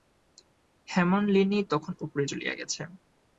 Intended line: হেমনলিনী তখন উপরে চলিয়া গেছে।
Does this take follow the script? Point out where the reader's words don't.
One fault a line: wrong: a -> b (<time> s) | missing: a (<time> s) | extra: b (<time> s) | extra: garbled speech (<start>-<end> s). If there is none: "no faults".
no faults